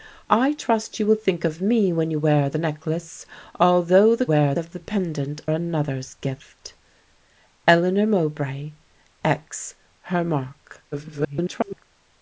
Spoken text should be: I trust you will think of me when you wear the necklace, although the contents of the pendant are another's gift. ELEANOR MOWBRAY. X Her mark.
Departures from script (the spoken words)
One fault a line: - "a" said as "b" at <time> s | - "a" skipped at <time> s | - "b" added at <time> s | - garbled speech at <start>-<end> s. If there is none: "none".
- "contents" said as "wear" at 4.2 s
- "are" skipped at 5.4 s
- garbled speech at 10.9-11.8 s